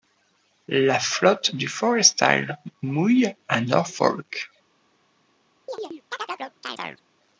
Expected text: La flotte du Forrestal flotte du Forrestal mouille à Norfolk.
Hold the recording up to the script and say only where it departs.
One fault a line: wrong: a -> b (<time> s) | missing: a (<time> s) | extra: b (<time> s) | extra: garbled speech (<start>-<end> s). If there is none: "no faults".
missing: flotte du Forrestal (2.6 s)